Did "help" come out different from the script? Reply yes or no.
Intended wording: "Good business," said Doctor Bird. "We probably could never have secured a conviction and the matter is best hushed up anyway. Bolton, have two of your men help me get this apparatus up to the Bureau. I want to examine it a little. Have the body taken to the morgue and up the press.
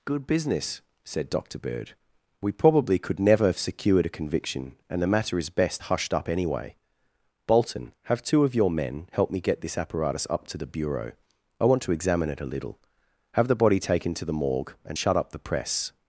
no